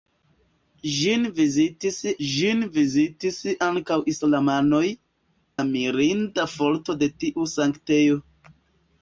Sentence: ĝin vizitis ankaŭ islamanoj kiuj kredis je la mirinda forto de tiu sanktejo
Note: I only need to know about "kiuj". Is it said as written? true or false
false